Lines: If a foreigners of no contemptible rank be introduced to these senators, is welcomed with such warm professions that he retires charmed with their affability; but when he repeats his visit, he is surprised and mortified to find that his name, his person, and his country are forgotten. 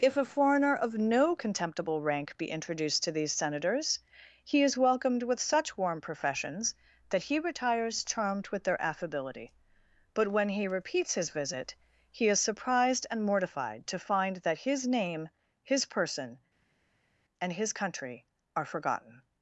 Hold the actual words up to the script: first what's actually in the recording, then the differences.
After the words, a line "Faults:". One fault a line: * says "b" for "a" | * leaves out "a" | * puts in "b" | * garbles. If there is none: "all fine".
If a foreigner of no contemptible rank be introduced to these senators, he is welcomed with such warm professions that he retires charmed with their affability; but when he repeats his visit, he is surprised and mortified to find that his name, his person, and his country are forgotten.
Faults:
* says "foreigner" for "foreigners"
* puts in "he"